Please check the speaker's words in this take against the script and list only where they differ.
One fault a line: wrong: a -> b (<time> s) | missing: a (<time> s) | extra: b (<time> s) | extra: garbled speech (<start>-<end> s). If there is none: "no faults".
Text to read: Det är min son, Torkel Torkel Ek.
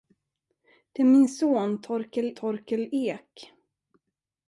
no faults